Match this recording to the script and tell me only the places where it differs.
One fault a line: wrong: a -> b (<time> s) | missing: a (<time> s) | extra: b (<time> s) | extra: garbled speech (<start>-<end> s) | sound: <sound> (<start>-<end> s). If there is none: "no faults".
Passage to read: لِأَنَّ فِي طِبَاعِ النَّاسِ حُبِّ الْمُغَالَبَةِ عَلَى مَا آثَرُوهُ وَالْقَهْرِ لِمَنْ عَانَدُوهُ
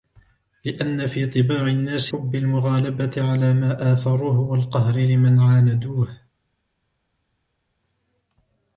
no faults